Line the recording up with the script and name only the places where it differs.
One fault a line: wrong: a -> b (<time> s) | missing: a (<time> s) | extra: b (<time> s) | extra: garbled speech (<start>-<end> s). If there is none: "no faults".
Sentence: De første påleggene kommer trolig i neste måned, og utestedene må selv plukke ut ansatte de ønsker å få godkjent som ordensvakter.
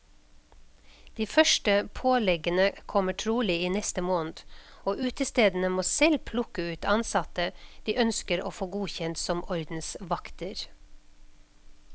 no faults